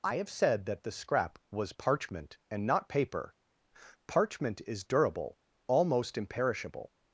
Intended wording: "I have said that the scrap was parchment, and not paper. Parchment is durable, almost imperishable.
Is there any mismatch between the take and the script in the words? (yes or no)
no